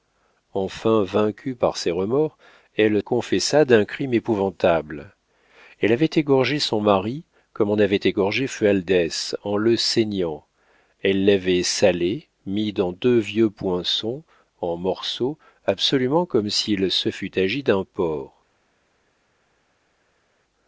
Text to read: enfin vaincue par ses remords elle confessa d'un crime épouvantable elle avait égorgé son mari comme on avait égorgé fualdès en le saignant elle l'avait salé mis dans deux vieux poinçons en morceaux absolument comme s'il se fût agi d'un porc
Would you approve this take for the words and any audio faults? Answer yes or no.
yes